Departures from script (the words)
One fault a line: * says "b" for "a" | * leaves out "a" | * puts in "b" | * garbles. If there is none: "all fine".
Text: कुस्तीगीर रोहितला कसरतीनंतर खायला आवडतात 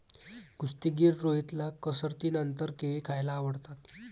* puts in "केळी"